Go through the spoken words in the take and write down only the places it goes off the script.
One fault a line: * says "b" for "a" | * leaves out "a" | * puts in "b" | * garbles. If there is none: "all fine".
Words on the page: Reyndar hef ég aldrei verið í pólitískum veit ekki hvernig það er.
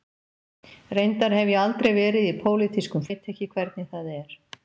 all fine